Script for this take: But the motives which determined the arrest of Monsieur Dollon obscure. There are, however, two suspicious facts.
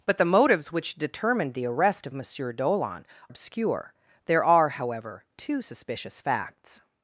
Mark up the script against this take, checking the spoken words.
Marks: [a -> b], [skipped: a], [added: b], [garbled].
But the motives which determined the arrest of Monsieur Dollon obscure. There are, however, two suspicious facts.